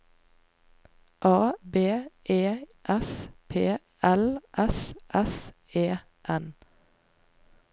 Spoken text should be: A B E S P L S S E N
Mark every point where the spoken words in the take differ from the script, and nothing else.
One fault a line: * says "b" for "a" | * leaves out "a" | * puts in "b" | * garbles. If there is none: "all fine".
all fine